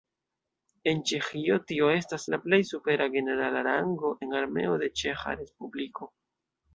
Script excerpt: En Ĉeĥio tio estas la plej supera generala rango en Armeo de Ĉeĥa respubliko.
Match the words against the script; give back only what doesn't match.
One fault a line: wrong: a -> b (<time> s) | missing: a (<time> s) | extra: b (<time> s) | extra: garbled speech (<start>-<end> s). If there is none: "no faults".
no faults